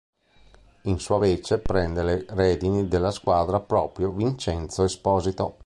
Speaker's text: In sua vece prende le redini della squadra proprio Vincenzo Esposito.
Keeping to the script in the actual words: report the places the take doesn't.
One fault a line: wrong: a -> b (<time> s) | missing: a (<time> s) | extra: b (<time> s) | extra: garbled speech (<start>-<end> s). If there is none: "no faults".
no faults